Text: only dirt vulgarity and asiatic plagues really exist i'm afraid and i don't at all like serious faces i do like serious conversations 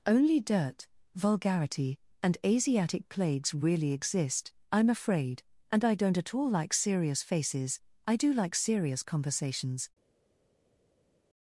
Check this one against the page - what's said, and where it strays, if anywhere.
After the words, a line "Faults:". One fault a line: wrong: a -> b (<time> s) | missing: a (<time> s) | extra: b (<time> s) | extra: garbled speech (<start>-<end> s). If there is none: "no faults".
only dirt vulgarity and asiatic plagues really exist i'm afraid and i don't at all like serious faces i do like serious conversations
Faults:
no faults